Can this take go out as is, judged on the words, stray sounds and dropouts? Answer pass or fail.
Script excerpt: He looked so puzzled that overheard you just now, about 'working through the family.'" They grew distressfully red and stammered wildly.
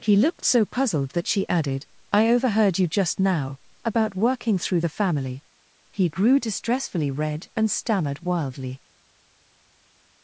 fail